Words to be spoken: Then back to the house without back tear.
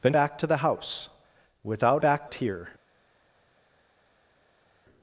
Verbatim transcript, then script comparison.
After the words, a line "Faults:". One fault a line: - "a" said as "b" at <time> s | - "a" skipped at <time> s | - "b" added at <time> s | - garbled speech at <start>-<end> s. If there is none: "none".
Then back to the house without back tear.
Faults:
none